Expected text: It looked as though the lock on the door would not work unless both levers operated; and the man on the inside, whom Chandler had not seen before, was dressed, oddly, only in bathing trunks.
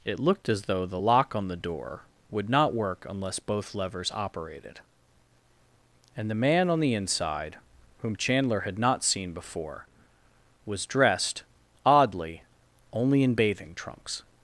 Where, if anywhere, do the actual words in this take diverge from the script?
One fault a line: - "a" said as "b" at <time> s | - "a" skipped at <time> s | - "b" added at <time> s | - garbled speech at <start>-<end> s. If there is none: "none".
none